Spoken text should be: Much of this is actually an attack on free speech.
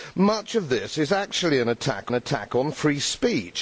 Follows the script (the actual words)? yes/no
no